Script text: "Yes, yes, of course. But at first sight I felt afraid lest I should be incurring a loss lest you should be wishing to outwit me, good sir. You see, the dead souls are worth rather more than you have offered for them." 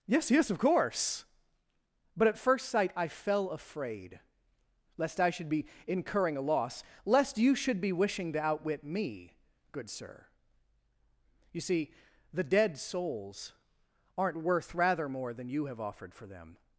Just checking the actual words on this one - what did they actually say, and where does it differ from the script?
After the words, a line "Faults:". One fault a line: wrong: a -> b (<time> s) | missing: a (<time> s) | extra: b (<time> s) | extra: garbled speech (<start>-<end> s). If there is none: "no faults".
"Yes, yes, of course. But at first sight I fell afraid lest I should be incurring a loss lest you should be wishing to outwit me, good sir. You see, the dead souls aren't worth rather more than you have offered for them."
Faults:
wrong: felt -> fell (3.1 s)
wrong: are -> aren't (14.2 s)